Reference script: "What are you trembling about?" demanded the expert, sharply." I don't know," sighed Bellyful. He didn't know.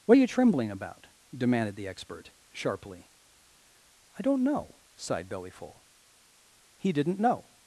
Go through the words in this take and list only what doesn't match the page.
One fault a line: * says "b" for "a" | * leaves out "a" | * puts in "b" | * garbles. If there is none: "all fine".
all fine